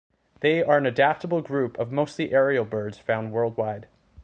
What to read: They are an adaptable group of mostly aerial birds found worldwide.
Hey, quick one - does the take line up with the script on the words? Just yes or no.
yes